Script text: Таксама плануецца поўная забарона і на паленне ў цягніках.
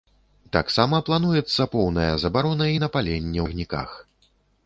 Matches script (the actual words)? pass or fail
fail